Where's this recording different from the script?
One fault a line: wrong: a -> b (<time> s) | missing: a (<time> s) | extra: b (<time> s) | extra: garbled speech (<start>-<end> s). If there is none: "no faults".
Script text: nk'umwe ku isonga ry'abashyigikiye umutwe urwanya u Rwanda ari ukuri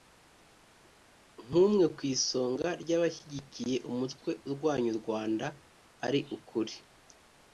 no faults